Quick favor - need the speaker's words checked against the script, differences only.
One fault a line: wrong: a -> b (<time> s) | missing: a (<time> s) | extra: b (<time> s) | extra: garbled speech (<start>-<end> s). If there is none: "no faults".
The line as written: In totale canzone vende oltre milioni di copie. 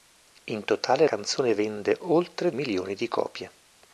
no faults